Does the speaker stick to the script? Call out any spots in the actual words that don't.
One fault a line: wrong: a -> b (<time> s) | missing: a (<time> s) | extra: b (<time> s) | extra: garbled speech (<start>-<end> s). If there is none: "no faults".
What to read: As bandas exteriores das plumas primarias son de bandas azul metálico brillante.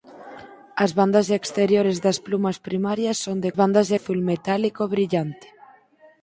no faults